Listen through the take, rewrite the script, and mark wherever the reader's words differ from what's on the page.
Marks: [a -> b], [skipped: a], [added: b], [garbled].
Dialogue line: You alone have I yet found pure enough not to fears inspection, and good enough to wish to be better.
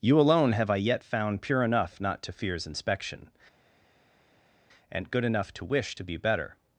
You alone have I yet found pure enough not to fears inspection, and good enough to wish to be better.